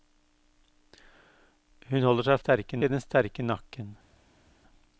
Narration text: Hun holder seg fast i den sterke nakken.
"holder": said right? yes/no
yes